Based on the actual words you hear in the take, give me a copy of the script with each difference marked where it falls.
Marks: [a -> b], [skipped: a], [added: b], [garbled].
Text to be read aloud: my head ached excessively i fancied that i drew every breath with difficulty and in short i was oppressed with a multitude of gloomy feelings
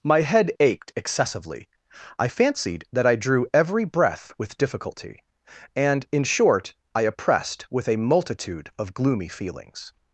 my head ached excessively i fancied that i drew every breath with difficulty and in short i [skipped: was] oppressed with a multitude of gloomy feelings